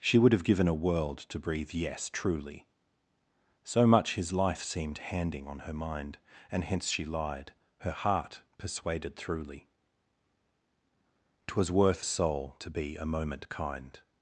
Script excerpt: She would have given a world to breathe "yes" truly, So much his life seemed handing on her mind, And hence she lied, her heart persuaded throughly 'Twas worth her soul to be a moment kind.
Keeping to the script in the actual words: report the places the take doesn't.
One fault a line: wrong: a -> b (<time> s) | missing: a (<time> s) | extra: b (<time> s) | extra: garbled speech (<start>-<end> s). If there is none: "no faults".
missing: her (12.0 s)